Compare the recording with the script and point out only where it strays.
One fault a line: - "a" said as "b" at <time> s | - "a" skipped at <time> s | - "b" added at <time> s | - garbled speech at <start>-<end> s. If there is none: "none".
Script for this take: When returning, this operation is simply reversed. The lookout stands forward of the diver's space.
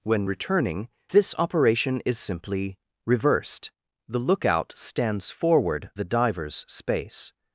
- "of" skipped at 5.9 s